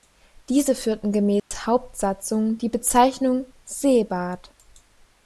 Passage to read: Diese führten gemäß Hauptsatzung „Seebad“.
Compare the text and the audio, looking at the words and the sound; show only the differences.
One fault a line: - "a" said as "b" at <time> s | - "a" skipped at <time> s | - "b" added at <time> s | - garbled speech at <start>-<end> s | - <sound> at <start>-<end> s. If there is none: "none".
- dropout at 1.4-1.5 s
- "die Bezeichnung" added at 2.6 s